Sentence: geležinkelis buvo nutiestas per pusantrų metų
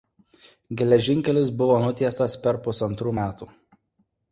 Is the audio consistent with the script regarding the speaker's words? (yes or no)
yes